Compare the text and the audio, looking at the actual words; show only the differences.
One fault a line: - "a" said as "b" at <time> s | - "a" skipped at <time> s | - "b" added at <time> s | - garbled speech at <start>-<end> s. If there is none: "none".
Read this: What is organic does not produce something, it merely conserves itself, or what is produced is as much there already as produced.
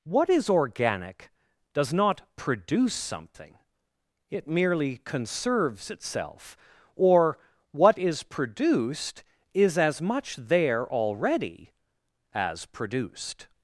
none